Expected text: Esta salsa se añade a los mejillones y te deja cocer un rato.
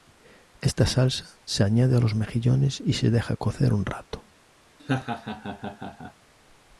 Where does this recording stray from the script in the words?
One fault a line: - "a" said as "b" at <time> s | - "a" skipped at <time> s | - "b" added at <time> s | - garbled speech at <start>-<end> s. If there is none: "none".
- "te" said as "se" at 2.9 s